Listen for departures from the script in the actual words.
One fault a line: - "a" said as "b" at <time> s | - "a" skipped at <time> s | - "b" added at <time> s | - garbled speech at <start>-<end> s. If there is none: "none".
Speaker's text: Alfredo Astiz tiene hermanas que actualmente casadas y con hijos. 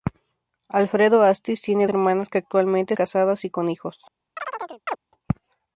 none